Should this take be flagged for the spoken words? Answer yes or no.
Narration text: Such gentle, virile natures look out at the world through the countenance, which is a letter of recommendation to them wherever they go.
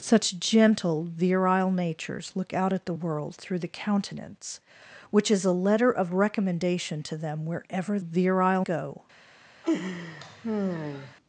yes